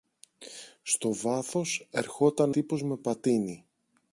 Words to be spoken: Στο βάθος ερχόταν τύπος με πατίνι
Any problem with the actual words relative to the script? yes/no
no